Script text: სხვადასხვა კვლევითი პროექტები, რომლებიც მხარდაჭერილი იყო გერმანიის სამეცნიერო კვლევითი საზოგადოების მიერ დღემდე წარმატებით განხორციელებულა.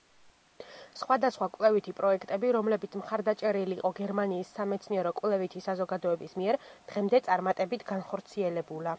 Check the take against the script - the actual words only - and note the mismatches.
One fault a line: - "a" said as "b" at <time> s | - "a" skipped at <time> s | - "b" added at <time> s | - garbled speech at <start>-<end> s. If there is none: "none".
none